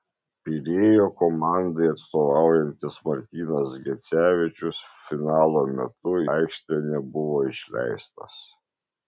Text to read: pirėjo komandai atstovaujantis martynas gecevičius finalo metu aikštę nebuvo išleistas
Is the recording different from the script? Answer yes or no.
no